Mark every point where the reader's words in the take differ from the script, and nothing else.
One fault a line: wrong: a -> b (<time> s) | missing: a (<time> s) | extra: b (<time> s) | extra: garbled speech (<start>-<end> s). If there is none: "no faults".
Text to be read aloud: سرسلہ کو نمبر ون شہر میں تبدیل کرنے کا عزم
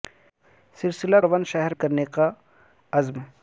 missing: کو نمبر (1.2 s)
missing: میں تبدیل (1.7 s)